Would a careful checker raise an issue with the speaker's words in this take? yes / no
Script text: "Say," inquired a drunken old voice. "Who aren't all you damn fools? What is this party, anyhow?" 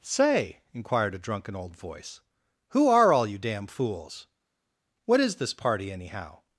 yes